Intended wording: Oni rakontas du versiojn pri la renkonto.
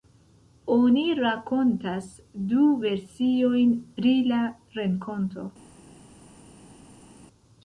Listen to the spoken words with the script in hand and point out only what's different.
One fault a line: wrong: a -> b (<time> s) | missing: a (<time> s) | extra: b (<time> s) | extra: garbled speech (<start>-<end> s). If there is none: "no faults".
no faults